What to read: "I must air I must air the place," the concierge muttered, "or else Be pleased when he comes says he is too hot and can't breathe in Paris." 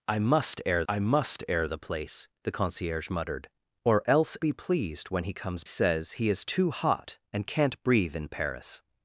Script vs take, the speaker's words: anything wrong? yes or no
no